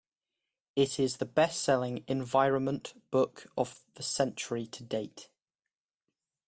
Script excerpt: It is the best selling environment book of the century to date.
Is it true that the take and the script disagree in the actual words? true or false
false